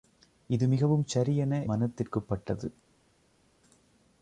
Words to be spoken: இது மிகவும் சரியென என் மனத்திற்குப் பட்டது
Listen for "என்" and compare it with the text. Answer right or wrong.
wrong